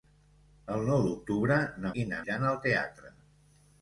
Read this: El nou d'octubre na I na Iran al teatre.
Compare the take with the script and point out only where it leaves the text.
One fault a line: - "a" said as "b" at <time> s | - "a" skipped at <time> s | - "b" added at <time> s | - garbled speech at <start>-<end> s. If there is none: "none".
none